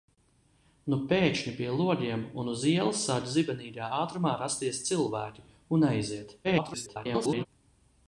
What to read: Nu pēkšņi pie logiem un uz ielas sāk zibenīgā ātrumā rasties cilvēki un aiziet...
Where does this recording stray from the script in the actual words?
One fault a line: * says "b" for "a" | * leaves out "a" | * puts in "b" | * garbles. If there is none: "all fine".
* garbles